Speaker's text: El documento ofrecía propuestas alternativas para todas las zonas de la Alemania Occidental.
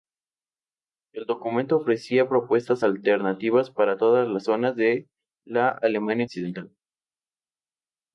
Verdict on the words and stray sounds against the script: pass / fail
pass